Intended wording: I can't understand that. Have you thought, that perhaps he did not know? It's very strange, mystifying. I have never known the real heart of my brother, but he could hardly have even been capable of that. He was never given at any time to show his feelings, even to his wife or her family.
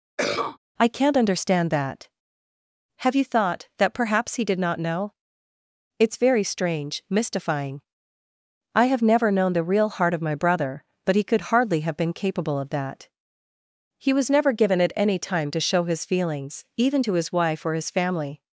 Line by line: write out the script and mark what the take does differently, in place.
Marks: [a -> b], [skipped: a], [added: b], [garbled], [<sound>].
[cough] I can't understand that. Have you thought, that perhaps he did not know? It's very strange, mystifying. I have never known the real heart of my brother, but he could hardly have [skipped: even] been capable of that. He was never given at any time to show his feelings, even to his wife or [her -> his] family.